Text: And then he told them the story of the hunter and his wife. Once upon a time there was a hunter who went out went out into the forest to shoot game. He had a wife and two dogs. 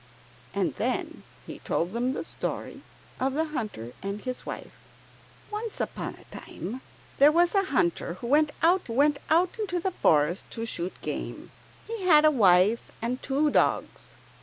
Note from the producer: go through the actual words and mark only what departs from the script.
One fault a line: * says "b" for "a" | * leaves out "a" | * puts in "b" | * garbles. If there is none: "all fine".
all fine